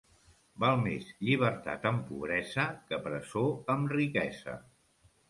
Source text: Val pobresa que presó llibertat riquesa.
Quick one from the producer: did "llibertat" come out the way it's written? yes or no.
no